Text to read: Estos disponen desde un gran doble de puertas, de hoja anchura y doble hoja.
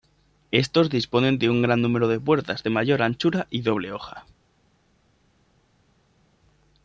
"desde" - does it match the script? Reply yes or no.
no